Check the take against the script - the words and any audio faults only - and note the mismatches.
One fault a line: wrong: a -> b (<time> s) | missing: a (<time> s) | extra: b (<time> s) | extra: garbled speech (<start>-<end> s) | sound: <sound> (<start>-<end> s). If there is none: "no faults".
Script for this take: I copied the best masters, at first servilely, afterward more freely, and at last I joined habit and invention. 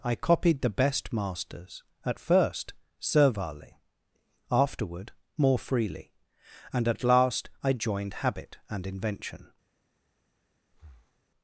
sound: breath (10.7-11.2 s)